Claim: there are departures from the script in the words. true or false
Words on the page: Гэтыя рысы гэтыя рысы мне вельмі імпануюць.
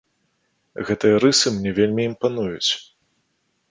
true